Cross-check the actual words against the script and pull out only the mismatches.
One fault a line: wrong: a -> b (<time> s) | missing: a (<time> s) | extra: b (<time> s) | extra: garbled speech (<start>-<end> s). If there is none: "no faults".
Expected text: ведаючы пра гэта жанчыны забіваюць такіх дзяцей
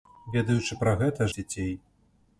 missing: жанчыны забіваюць такіх (1.3 s)